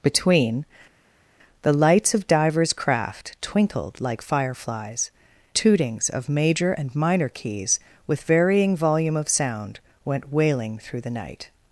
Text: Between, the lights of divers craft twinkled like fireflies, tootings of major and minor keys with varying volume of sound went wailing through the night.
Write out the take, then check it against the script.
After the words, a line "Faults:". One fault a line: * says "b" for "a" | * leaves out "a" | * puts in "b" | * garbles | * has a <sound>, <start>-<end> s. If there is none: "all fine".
Between, the lights of divers craft twinkled like fireflies, tootings of major and minor keys with varying volume of sound went wailing through the night.
Faults:
all fine